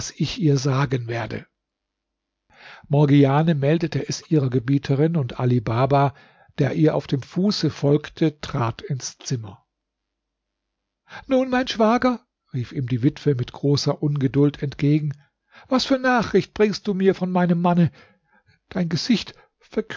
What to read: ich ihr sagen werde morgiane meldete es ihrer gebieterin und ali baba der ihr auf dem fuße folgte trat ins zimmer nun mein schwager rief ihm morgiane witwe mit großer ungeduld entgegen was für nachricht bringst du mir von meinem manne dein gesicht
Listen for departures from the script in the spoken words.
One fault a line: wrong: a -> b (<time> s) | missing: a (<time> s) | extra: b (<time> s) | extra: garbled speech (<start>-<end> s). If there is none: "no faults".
wrong: morgiane -> die (12.9 s)